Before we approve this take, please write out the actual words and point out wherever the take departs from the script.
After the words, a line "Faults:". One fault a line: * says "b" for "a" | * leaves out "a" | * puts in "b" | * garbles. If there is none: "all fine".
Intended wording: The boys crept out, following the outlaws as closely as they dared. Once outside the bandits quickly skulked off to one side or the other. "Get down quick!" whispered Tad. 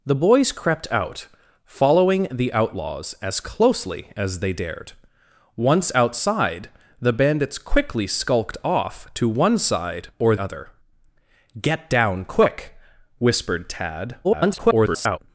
The boys crept out, following the outlaws as closely as they dared. Once outside the bandits quickly skulked off to one side or other. "Get down quick!" whispered Tad. [garbled]
Faults:
* leaves out "the"
* garbles